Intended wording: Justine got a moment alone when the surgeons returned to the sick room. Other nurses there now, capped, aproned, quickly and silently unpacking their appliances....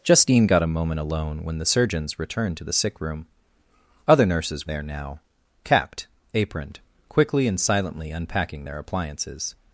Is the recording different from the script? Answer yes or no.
no